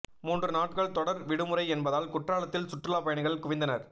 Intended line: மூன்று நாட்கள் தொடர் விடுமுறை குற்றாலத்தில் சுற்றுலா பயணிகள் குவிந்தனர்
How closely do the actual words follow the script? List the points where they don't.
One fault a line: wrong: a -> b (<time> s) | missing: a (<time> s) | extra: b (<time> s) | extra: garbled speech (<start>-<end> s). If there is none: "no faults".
extra: என்பதால் (1.7 s)